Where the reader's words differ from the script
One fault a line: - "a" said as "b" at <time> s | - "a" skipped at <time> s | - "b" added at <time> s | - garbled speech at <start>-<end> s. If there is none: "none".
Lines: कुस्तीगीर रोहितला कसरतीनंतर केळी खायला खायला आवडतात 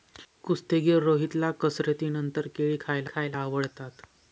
none